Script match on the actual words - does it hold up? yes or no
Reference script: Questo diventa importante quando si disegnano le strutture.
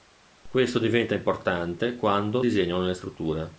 no